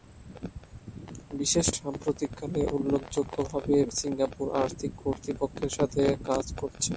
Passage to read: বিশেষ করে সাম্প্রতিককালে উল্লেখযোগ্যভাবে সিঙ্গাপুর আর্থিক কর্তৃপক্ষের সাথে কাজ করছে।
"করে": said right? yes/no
no